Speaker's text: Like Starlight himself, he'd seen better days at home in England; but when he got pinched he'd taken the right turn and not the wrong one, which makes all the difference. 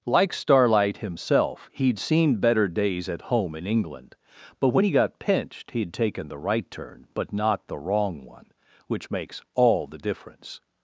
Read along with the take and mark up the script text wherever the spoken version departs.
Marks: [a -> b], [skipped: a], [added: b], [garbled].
Like Starlight himself, he'd seen better days at home in England; but when he got pinched he'd taken the right turn [and -> but] not the wrong one, which makes all the difference.